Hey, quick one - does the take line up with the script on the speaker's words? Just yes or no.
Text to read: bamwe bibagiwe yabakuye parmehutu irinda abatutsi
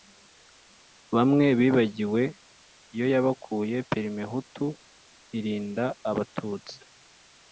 no